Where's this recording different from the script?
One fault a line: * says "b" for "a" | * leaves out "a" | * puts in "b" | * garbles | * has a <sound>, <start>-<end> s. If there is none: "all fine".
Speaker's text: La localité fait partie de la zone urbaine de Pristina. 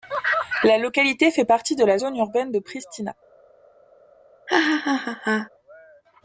* has a laugh, 4.5-5.5 s